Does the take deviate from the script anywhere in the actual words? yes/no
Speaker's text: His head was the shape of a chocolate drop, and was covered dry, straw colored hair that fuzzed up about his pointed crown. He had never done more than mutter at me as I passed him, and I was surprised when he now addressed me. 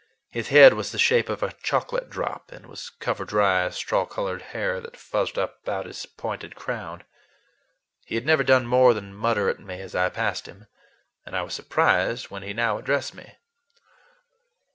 no